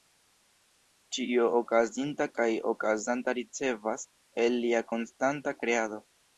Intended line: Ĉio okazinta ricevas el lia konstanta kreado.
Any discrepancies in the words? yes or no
yes